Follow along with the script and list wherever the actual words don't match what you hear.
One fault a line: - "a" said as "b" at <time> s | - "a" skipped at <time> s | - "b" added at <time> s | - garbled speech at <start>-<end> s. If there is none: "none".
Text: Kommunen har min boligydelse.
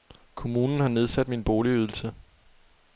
- "nedsat" added at 0.9 s